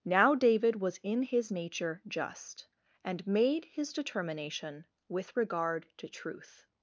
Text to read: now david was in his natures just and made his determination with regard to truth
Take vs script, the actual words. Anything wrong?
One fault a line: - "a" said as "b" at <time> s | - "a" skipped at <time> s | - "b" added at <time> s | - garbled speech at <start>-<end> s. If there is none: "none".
- "natures" said as "nature" at 1.5 s